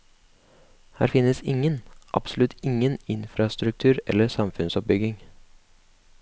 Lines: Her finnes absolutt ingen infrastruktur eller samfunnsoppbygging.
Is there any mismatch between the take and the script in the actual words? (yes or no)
yes